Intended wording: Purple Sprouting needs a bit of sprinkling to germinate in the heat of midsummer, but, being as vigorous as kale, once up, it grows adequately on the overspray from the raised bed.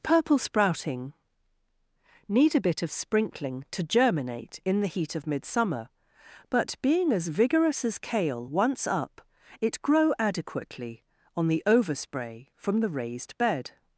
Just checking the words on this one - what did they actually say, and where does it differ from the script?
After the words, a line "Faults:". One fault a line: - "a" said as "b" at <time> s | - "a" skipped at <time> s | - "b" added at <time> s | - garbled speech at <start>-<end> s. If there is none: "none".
Purple Sprouting need a bit of sprinkling to germinate in the heat of midsummer, but, being as vigorous as kale, once up, it grow adequately on the overspray from the raised bed.
Faults:
- "needs" said as "need" at 2.3 s
- "grows" said as "grow" at 9.8 s